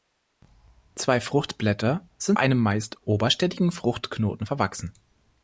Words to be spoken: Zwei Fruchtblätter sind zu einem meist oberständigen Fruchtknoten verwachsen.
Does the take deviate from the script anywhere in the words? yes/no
yes